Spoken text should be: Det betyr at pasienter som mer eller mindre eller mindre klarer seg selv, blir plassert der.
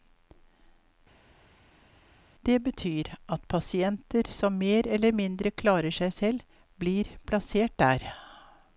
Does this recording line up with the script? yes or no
no